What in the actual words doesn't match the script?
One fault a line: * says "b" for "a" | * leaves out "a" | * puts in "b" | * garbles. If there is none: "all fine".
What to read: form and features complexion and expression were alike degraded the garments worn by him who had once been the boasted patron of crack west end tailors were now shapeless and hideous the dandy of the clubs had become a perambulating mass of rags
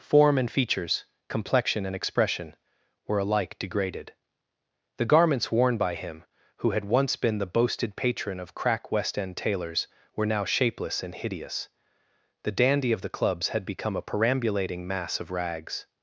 all fine